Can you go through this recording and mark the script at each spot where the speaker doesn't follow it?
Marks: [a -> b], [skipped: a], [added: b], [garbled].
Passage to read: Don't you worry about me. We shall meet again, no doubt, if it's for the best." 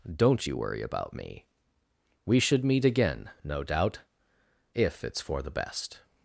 Don't you worry about me. We [shall -> should] meet again, no doubt, if it's for the best."